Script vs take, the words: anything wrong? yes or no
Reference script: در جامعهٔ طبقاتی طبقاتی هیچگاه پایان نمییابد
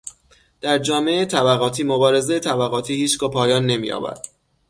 yes